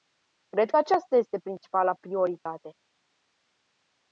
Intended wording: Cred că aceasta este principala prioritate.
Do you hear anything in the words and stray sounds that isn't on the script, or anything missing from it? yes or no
yes